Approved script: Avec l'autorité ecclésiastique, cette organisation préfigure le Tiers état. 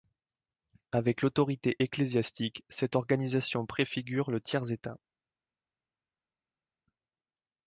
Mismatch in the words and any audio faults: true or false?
false